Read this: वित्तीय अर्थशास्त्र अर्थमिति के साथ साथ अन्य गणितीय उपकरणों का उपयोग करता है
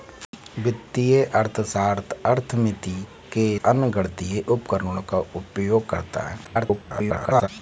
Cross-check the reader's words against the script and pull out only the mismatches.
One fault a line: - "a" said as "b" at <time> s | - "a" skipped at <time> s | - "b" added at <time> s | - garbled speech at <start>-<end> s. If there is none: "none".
- "साथ साथ" skipped at 3.5 s
- garbled speech at 6.4-7.5 s